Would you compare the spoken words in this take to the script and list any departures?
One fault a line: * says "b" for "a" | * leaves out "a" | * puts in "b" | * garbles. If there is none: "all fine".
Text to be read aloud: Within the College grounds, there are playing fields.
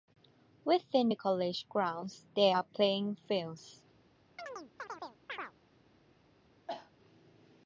all fine